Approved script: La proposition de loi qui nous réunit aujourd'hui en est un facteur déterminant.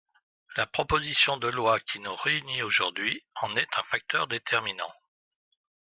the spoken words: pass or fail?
pass